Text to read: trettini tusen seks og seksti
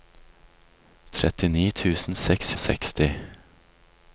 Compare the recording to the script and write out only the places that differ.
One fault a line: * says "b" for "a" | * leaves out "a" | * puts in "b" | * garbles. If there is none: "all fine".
all fine